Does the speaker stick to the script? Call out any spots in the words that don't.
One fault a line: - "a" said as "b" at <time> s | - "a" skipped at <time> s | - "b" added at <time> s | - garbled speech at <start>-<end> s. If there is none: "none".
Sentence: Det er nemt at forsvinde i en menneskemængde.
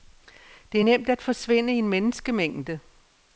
none